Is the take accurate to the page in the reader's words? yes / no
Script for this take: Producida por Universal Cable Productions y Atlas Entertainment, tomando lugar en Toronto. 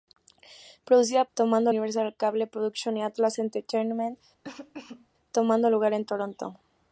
no